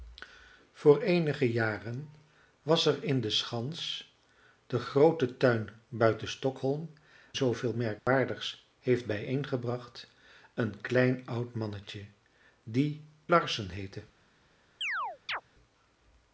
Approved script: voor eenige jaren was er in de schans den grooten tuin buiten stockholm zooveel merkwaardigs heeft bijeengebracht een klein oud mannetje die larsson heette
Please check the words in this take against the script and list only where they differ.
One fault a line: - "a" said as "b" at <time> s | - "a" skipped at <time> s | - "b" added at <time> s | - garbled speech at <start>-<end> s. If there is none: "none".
none